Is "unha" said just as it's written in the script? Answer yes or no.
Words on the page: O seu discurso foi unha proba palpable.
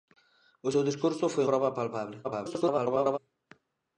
no